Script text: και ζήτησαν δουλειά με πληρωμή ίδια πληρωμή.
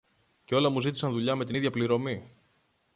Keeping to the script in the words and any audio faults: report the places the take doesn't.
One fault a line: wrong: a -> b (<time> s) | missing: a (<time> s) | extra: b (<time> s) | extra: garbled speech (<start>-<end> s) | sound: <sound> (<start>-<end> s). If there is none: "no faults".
extra: όλα μου (0.6 s)
wrong: πληρωμή -> την (1.4 s)